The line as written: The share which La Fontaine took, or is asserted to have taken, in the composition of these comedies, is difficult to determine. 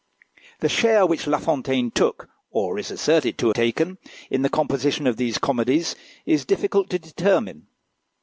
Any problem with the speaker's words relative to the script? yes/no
yes